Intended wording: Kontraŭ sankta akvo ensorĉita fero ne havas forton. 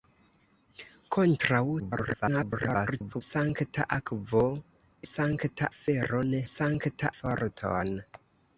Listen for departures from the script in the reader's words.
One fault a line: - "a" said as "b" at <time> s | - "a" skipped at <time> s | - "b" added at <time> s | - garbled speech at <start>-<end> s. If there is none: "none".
- garbled speech at 1.8-3.2 s
- "ensorĉita" said as "sankta" at 5.1 s
- "havas" said as "sankta" at 6.5 s